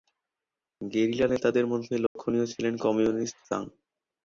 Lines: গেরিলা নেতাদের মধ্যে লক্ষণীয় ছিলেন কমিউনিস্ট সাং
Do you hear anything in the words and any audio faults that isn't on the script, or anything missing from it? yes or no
yes